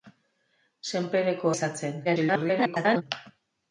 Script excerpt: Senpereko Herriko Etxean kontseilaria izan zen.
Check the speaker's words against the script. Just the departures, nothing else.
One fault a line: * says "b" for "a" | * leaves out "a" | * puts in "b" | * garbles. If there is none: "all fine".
* leaves out "Herriko Etxean kontseilaria"
* garbles